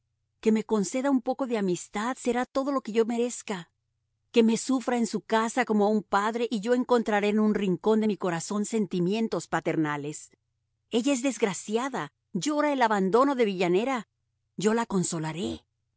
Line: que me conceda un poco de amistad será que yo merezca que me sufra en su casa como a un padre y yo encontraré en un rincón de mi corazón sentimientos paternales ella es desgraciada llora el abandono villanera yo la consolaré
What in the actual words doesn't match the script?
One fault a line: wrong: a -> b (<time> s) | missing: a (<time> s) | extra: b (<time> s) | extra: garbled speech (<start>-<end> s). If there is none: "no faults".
extra: todo lo (2.5 s)
extra: de (13.4 s)